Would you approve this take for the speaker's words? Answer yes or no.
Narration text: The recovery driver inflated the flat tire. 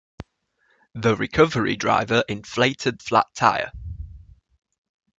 no